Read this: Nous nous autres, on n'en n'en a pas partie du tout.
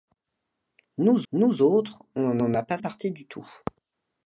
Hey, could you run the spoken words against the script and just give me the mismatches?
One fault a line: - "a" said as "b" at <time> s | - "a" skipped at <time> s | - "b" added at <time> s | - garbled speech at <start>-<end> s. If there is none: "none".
none